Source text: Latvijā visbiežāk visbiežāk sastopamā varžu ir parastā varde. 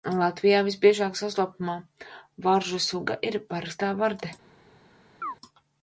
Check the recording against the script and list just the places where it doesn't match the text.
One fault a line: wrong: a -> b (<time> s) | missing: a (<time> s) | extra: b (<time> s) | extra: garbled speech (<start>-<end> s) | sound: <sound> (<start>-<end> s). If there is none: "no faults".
missing: visbiežāk (1.2 s)
extra: suga (2.8 s)
sound: chirp (5.2-5.4 s)